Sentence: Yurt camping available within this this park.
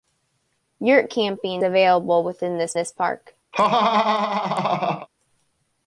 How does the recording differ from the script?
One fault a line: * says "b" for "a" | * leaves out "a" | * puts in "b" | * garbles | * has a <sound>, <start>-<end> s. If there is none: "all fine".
* has a laugh, 3.5-5.1 s